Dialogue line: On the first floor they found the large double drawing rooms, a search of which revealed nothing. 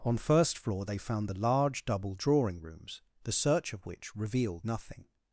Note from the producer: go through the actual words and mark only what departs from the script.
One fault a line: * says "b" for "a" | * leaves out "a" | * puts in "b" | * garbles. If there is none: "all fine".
* leaves out "the"
* says "the" for "a"